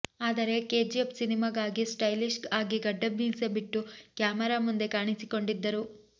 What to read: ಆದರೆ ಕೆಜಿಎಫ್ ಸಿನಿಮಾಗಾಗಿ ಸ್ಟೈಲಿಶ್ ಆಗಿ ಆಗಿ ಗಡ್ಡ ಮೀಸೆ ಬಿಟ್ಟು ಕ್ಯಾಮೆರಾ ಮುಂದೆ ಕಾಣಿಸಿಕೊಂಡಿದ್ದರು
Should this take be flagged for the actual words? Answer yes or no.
yes